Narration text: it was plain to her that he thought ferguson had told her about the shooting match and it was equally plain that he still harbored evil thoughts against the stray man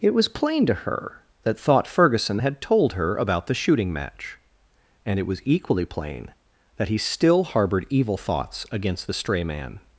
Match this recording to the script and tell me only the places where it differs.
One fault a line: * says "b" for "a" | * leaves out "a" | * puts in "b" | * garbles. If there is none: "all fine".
* leaves out "he"